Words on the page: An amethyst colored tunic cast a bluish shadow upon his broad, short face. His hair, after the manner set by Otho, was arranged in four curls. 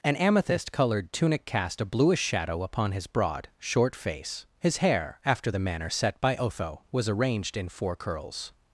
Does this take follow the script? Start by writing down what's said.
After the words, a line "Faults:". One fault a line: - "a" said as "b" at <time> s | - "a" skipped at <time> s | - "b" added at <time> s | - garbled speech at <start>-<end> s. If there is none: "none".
An amethyst colored tunic cast a bluish shadow upon his broad, short face. His hair, after the manner set by Otho, was arranged in four curls.
Faults:
none